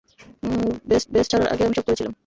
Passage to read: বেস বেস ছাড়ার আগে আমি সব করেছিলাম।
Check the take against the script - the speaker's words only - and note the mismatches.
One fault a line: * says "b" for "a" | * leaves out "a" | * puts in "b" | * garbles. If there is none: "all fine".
all fine